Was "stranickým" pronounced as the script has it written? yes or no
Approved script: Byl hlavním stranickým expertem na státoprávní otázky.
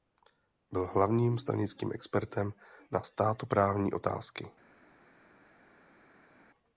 yes